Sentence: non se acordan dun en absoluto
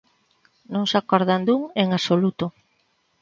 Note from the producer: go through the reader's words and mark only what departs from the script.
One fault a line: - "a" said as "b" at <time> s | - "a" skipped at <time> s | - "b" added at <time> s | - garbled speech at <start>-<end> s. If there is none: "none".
none